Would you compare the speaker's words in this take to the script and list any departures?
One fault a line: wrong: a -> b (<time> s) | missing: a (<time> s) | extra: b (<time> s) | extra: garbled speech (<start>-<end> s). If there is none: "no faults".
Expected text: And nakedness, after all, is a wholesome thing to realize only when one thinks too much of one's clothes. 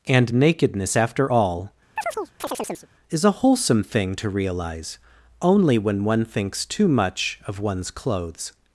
no faults